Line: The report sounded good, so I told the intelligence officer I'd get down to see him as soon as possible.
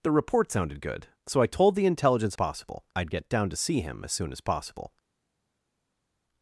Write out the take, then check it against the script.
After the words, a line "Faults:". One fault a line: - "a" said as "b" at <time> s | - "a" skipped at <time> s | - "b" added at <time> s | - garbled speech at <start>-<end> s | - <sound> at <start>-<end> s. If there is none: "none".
The report sounded good, so I told the intelligence possible I'd get down to see him as soon as possible.
Faults:
- "officer" said as "possible" at 2.3 s